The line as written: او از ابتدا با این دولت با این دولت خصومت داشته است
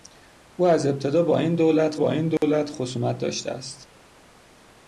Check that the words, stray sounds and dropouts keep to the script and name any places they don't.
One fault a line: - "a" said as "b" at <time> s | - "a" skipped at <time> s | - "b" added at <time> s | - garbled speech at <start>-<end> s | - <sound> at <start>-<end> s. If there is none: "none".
- dropout at 2.4-2.4 s